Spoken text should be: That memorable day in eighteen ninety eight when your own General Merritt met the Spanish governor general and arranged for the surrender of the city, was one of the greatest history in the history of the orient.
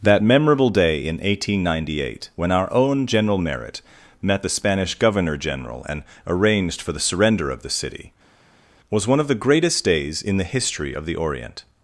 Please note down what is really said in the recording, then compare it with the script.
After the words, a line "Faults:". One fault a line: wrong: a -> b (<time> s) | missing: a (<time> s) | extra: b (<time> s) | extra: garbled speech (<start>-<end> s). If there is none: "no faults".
That memorable day in eighteen ninety eight when our own General Merritt met the Spanish governor general and arranged for the surrender of the city, was one of the greatest days in the history of the orient.
Faults:
wrong: your -> our (2.5 s)
wrong: history -> days (9.8 s)